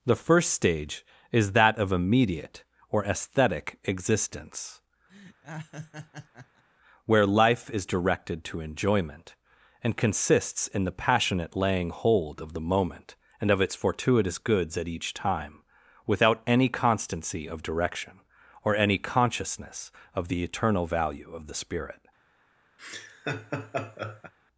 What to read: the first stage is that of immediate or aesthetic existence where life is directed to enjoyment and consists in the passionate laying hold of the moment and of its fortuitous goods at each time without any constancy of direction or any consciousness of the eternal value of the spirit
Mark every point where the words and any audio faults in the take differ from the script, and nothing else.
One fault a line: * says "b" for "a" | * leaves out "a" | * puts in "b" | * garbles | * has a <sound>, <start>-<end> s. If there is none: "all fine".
* has a laugh, 5.1-6.6 s
* has a laugh, 22.8-24.3 s